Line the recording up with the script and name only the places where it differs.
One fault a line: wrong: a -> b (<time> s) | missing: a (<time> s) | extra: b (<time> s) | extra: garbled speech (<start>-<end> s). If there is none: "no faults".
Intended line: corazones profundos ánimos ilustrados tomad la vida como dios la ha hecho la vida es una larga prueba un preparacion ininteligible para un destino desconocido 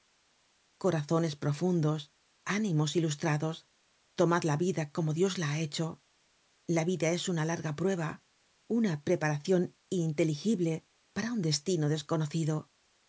wrong: un -> una (8.7 s)